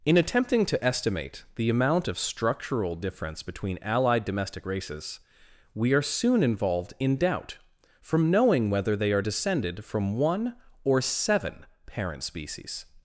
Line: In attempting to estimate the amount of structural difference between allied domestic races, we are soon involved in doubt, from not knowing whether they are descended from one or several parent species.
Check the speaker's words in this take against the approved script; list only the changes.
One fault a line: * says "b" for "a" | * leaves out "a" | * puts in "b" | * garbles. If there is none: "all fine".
* leaves out "not"
* says "seven" for "several"